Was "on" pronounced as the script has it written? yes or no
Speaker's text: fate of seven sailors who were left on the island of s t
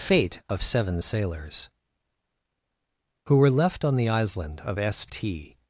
yes